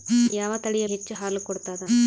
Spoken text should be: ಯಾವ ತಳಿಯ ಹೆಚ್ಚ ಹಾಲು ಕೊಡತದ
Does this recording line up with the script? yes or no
yes